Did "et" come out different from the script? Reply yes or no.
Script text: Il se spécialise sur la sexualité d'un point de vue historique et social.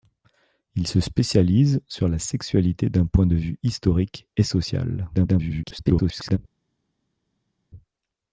no